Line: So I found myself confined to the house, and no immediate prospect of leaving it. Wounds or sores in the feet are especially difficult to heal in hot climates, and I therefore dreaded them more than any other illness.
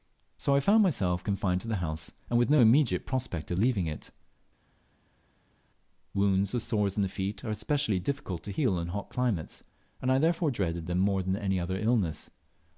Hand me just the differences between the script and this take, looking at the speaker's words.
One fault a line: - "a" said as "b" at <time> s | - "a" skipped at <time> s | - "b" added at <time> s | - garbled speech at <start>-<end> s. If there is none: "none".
- "with" added at 2.4 s